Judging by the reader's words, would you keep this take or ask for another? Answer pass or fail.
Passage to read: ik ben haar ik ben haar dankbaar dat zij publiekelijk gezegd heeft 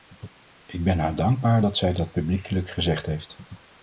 fail